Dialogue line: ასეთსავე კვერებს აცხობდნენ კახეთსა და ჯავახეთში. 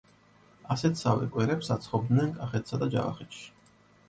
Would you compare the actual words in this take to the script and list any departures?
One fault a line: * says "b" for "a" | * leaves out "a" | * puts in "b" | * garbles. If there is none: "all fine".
all fine